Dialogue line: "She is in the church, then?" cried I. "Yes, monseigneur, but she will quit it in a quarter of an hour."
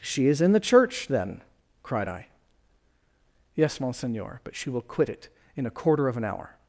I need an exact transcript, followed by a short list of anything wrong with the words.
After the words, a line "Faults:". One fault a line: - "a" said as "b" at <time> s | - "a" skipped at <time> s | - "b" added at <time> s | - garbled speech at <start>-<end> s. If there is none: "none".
"She is in the church, then?" cried I. "Yes, monseigneur, but she will quit it in a quarter of an hour."
Faults:
none